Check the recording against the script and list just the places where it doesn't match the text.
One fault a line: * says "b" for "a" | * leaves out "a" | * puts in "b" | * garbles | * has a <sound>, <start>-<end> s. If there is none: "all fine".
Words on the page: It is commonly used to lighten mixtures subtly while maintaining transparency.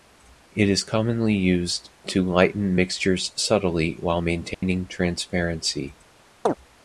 * has a dropout, 4.5-4.6 s
* has a chirp, 6.5-6.5 s